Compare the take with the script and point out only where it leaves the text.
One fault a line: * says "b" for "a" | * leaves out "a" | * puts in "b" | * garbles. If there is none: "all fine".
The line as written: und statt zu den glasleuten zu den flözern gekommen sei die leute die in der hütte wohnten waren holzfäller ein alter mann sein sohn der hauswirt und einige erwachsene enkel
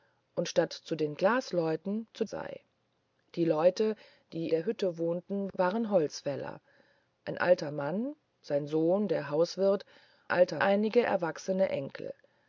* leaves out "den flözern gekommen"
* leaves out "in"
* says "alter" for "und"